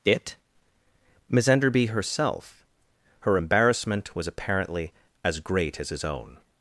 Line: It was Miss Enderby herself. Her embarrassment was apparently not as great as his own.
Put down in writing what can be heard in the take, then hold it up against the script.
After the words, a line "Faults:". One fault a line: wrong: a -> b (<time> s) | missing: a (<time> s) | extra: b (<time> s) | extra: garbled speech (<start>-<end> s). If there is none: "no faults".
It Miss Enderby herself. Her embarrassment was apparently as great as his own.
Faults:
missing: was (0.3 s)
missing: not (4.9 s)